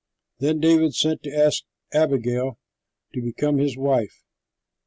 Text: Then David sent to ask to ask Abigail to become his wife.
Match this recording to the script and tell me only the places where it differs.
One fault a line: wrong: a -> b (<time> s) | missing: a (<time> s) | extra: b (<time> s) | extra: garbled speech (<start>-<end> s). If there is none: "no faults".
missing: to ask (1.6 s)